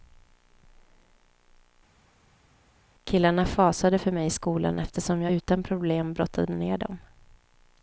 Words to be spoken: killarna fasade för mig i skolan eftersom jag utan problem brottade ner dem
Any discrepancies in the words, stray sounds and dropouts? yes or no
no